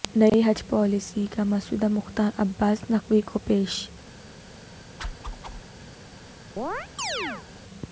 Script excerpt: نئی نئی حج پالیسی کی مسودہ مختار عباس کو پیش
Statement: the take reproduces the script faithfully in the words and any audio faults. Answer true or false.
false